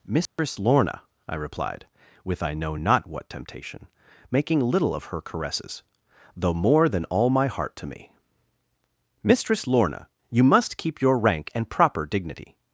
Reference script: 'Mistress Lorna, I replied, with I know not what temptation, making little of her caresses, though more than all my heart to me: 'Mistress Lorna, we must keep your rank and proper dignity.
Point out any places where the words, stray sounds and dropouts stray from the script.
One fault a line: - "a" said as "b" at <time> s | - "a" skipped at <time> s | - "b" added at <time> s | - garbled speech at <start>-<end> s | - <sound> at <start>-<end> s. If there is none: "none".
- dropout at 0.3-0.4 s
- "we" said as "you" at 10.3 s